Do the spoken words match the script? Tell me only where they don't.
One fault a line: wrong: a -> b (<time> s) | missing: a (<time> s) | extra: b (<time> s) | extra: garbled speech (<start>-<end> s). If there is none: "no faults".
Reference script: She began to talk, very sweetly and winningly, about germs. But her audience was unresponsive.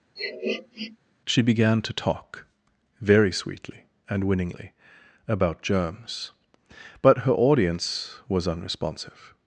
no faults